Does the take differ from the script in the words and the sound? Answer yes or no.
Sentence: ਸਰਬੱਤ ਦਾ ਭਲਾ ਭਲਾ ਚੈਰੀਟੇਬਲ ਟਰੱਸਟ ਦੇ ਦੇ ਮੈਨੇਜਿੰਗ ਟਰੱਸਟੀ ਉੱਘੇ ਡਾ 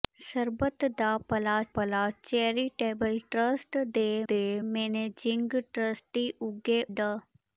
no